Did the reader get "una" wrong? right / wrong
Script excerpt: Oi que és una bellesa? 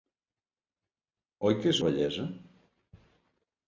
wrong